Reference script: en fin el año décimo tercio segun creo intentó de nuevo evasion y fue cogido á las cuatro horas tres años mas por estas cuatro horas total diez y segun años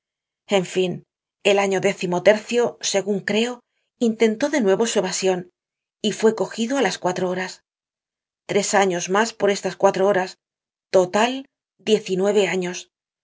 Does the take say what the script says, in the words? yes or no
no